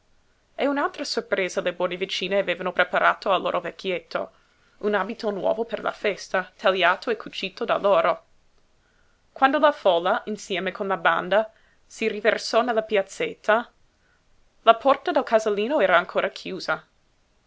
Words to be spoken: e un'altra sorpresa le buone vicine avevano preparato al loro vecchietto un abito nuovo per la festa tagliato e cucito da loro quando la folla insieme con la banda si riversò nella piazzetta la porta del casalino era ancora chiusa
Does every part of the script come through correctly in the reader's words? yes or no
yes